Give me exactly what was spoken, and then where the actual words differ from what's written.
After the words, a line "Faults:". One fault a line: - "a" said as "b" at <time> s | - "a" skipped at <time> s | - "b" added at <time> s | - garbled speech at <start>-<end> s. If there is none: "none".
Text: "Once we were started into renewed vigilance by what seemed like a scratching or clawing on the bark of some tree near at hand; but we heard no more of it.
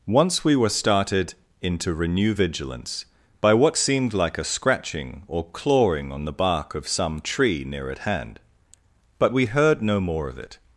"Once we were started into renew vigilance by what seemed like a scratching or clawing on the bark of some tree near at hand; but we heard no more of it.
Faults:
- "renewed" said as "renew" at 1.9 s